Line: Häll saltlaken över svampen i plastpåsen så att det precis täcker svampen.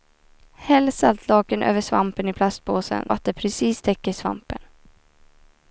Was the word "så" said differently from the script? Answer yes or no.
yes